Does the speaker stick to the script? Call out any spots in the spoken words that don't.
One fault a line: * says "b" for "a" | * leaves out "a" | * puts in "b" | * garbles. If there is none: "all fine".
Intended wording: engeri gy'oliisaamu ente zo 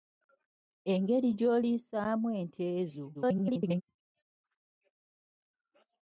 * garbles